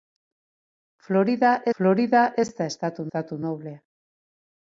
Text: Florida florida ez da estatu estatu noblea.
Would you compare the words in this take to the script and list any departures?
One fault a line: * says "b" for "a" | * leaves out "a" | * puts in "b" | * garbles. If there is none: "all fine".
all fine